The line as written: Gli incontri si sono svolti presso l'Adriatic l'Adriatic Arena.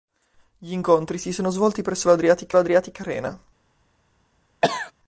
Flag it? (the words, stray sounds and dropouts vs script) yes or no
yes